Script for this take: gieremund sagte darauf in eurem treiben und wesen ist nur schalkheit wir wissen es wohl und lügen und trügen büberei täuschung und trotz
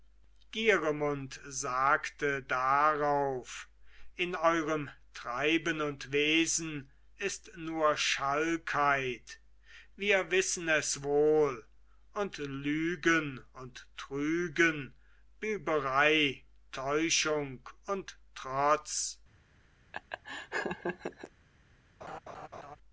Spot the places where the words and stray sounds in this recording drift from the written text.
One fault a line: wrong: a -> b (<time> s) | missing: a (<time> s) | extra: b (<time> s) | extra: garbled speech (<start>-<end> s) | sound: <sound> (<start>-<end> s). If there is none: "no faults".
sound: laugh (19.9-21.3 s)
sound: laugh (22.0-22.8 s)